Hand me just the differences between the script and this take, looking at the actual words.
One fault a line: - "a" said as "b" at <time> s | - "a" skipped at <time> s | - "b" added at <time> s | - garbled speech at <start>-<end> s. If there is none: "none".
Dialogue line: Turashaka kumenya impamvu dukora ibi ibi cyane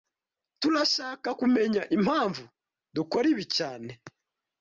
- "ibi" skipped at 3.4 s